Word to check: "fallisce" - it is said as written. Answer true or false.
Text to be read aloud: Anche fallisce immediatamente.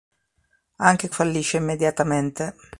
true